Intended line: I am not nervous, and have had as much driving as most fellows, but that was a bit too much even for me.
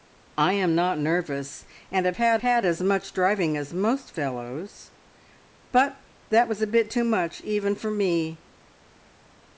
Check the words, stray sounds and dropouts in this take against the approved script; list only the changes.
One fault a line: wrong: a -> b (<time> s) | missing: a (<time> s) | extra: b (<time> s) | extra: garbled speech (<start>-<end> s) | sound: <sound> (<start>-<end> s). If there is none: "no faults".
extra: had (2.4 s)